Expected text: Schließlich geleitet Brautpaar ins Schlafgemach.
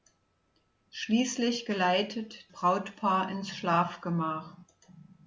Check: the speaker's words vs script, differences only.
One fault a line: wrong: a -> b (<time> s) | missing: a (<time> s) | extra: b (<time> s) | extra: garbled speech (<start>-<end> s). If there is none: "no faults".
no faults